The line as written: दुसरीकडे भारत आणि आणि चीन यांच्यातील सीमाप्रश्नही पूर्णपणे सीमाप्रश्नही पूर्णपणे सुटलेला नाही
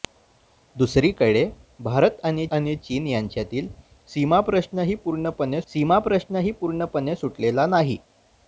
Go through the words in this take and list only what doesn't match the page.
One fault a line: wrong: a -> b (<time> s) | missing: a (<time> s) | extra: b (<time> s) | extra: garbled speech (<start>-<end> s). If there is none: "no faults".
no faults